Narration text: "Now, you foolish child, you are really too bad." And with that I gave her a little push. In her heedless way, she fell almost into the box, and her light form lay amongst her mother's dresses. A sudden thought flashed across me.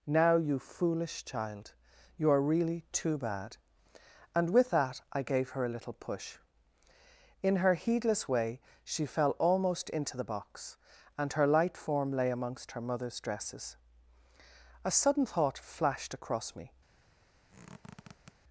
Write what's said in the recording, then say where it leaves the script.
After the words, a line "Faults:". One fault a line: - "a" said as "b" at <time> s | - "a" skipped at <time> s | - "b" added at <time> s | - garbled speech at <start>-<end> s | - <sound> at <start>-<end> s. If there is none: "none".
"Now, you foolish child, you are really too bad." And with that I gave her a little push. In her heedless way, she fell almost into the box, and her light form lay amongst her mother's dresses. A sudden thought flashed across me.
Faults:
- squeak at 17.5-18.3 s